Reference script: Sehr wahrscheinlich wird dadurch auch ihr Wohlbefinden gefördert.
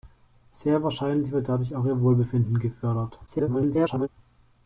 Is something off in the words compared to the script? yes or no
yes